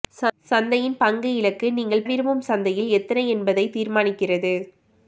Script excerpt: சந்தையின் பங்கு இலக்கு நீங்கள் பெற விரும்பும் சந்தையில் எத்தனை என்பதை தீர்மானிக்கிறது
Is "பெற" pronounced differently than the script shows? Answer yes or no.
yes